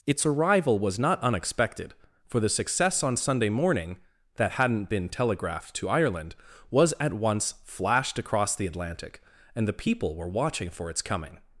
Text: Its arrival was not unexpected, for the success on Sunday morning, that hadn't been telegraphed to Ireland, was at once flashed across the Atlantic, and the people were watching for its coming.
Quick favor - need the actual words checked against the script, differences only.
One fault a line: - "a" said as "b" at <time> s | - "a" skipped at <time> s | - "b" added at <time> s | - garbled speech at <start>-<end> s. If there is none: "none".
none